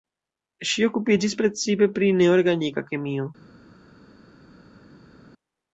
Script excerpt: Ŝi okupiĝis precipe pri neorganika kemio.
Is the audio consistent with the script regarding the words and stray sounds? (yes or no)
yes